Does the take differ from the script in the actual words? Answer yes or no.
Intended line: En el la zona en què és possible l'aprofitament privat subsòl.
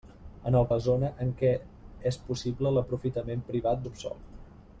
no